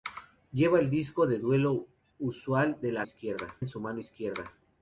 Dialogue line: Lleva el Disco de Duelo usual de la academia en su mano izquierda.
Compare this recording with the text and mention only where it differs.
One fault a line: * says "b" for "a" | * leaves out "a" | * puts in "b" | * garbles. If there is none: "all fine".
* says "izquierda" for "academia"